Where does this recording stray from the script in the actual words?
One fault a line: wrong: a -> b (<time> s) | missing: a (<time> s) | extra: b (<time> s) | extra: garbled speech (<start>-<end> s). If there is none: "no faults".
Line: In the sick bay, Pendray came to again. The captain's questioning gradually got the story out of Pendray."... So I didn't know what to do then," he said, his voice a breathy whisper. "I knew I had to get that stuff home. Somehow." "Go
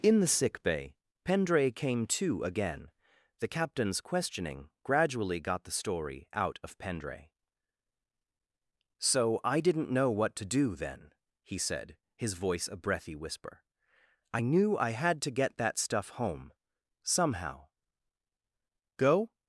no faults